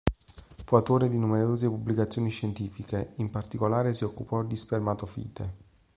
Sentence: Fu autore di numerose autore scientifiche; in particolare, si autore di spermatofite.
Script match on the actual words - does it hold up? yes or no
no